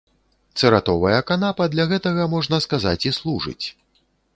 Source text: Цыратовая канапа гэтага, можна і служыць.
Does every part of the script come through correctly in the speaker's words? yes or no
no